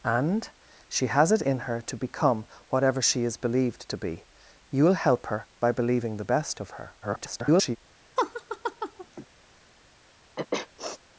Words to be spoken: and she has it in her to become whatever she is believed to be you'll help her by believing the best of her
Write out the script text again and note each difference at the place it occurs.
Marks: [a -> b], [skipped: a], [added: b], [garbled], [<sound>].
and she has it in her to become whatever she is believed to be you'll help her by believing the best of her [garbled] [laugh] [sniff]